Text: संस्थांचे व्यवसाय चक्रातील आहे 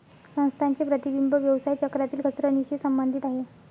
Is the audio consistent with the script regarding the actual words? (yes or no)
no